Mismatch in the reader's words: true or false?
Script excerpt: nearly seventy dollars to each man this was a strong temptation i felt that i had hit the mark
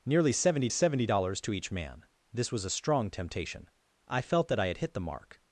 true